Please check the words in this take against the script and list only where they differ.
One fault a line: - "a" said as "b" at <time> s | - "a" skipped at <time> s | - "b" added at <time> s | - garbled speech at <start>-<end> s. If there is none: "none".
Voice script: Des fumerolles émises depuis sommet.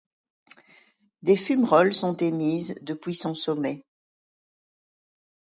- "sont" added at 1.9 s
- "son" added at 3.2 s